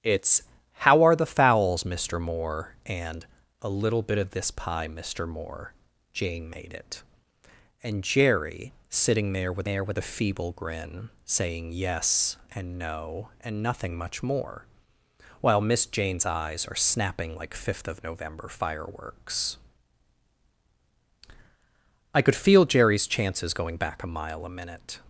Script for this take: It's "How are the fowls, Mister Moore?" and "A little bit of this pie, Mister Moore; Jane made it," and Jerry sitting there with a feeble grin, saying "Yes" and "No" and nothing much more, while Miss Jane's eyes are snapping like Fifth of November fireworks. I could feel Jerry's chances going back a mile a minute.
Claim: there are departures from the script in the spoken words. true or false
true